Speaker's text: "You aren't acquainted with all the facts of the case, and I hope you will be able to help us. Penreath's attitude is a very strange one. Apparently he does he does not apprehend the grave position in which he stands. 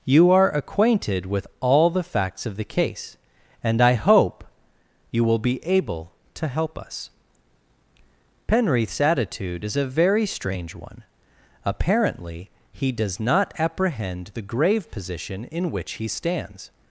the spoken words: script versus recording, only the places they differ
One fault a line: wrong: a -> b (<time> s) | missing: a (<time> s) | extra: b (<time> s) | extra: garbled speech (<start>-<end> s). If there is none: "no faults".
wrong: aren't -> are (0.3 s)
missing: he does (13.2 s)